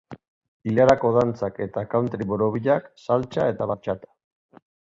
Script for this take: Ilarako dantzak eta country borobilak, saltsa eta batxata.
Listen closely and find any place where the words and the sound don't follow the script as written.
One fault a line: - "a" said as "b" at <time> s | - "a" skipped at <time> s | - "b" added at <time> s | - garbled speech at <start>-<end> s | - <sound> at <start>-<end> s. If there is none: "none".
none